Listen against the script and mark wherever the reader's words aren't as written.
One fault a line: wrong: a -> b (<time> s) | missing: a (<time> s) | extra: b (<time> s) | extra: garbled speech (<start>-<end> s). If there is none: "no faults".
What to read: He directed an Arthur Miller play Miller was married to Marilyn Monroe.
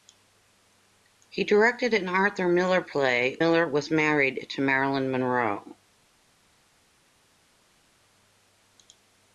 no faults